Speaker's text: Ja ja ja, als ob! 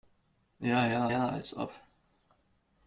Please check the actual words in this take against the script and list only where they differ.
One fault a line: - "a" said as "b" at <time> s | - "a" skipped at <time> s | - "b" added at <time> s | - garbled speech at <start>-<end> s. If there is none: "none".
none